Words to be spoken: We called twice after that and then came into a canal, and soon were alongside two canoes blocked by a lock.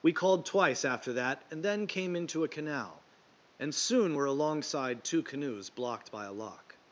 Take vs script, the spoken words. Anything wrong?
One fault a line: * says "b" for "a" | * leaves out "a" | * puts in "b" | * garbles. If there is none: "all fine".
all fine